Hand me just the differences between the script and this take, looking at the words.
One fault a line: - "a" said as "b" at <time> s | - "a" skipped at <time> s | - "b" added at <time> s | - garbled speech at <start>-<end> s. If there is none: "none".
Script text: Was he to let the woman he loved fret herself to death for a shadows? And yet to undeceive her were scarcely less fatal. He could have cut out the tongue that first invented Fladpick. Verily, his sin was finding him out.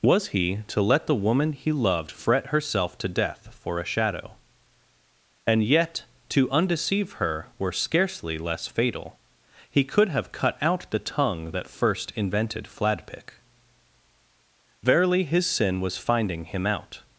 - "shadows" said as "shadow" at 3.9 s